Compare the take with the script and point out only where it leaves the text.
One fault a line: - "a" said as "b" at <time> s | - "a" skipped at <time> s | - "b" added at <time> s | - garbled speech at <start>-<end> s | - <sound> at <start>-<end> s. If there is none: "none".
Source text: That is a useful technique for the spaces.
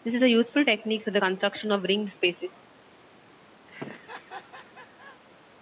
- "That" said as "This" at 0.0 s
- "construction of ringed" added at 1.2 s
- laugh at 3.7-5.2 s